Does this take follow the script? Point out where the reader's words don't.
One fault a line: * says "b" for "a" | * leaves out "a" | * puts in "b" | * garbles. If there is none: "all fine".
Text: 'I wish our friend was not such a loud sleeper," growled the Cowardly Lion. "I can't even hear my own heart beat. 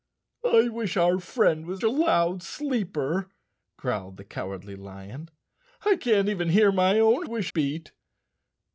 * leaves out "not such"
* says "wish" for "heart"